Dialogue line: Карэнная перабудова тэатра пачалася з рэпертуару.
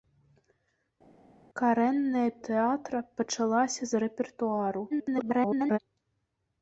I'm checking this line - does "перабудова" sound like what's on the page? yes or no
no